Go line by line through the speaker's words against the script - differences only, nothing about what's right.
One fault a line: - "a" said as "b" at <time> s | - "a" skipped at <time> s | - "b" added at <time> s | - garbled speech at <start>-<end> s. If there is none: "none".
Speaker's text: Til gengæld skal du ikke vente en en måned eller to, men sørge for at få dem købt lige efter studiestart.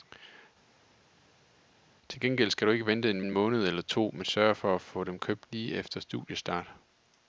none